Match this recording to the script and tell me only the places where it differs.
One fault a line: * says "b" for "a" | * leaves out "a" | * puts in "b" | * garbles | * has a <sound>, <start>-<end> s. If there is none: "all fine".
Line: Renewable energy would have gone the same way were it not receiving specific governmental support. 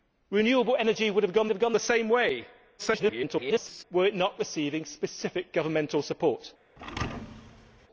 * puts in "have gone"
* garbles
* has a thud, 6.8-7.9 s